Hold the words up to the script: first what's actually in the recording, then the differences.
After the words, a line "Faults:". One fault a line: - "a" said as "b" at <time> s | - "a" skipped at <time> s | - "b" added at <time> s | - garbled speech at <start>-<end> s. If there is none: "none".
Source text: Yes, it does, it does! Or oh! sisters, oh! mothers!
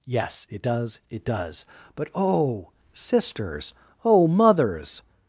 Yes, it does, it does! But oh! sisters, oh! mothers!
Faults:
- "Or" said as "But" at 2.0 s